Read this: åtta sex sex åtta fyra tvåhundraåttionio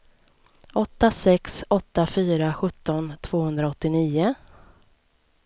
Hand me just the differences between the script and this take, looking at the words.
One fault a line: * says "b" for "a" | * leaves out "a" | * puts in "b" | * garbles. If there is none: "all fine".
* leaves out "sex"
* puts in "sjutton"